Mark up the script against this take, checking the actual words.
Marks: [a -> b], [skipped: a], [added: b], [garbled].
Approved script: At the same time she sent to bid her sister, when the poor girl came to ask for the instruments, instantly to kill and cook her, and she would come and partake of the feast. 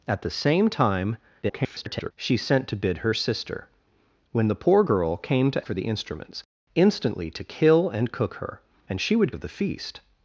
At the same time [garbled] she sent to bid her sister, when the poor girl came to [skipped: ask] for the instruments, instantly to kill and cook her, and she would [skipped: come and partake] of the feast.